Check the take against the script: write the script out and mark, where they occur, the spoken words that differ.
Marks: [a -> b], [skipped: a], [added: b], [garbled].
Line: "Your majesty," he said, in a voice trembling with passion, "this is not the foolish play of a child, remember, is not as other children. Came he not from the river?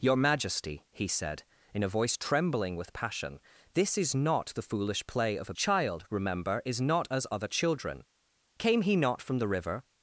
"Your majesty," he said, in a voice trembling with passion, "this is not the foolish play of a child, remember, is not as other children. Came he not from the river?